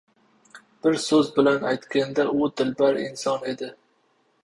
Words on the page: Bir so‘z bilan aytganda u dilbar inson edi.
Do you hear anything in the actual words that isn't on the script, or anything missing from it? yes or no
no